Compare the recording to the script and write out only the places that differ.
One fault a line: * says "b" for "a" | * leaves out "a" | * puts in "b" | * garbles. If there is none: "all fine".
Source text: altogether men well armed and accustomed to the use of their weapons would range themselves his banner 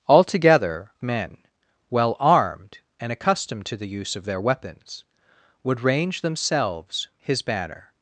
all fine